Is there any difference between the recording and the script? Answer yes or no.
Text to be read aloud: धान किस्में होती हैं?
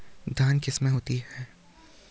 no